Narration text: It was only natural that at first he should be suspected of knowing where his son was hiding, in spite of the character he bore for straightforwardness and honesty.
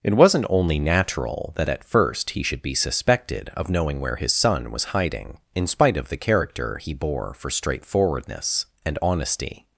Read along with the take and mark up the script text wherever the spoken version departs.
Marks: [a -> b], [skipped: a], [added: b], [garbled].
It [was -> wasn't] only natural that at first he should be suspected of knowing where his son was hiding, in spite of the character he bore for straightforwardness and honesty.